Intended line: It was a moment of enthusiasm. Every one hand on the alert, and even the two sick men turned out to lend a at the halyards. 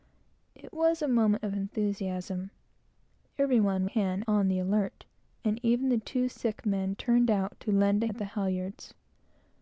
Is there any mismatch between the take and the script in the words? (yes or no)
no